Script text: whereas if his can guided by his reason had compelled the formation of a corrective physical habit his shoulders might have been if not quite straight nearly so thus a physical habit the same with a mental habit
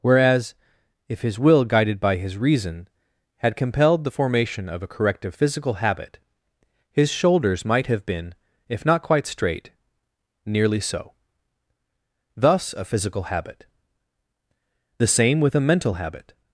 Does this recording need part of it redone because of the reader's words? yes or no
yes